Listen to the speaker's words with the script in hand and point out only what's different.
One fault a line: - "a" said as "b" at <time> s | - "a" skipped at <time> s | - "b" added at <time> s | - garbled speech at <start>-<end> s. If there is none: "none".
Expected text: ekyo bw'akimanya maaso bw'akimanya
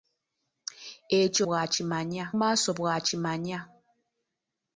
none